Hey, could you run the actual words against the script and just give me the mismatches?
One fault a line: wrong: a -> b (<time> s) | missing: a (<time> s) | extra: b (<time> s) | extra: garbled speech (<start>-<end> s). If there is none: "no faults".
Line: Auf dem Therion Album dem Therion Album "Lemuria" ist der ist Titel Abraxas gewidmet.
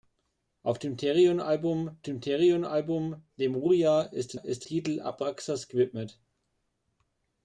no faults